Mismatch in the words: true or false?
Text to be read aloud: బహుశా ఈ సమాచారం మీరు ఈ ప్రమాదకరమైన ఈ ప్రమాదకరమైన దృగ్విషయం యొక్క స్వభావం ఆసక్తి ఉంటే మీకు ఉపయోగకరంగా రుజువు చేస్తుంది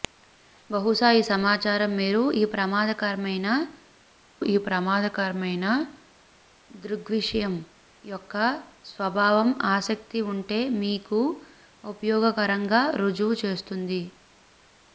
false